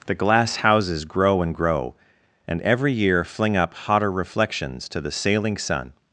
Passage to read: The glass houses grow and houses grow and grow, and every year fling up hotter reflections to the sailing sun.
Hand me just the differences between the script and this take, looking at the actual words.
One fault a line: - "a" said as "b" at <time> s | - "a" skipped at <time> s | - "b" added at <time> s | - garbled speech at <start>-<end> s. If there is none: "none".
- "houses grow and" skipped at 1.5 s